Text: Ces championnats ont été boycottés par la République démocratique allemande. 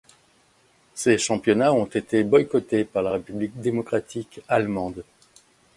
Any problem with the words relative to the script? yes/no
no